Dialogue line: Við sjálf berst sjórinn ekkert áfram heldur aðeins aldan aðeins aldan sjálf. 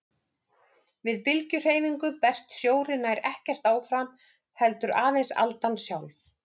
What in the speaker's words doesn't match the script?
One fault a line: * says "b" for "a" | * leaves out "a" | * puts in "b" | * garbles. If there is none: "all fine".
* says "bylgjuhreyfingu" for "sjálf"
* puts in "nær"
* leaves out "aðeins aldan"